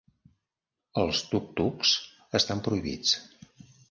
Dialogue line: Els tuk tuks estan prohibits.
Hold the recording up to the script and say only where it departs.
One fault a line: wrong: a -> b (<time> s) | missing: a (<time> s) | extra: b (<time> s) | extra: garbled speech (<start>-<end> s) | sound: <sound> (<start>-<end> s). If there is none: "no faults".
no faults